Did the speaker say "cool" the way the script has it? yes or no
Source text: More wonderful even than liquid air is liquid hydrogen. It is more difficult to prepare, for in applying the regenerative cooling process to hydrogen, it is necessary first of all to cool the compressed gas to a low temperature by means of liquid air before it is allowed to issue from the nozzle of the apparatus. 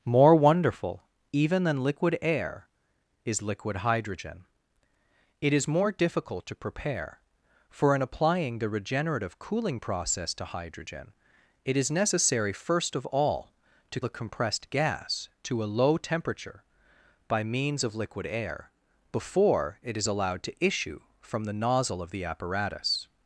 no